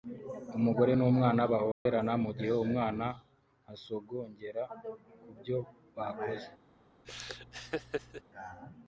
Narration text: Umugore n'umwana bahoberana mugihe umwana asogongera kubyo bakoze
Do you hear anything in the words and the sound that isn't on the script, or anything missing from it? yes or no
yes